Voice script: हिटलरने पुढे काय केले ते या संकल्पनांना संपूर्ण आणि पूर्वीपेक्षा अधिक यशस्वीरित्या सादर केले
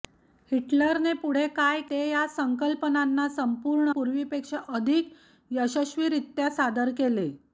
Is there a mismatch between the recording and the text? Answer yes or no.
yes